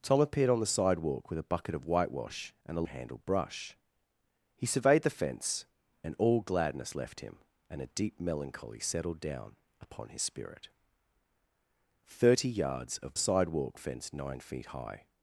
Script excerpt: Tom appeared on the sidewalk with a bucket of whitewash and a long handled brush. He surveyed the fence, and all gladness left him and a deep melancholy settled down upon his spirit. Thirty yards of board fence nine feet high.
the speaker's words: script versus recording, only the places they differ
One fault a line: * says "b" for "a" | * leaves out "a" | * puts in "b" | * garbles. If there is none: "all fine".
* leaves out "long"
* says "sidewalk" for "board"